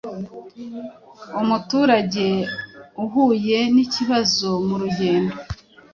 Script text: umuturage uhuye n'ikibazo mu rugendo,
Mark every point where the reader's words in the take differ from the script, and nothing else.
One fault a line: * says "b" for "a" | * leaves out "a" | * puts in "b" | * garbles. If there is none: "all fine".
all fine